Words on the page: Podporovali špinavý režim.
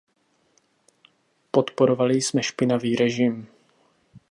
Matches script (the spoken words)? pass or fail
fail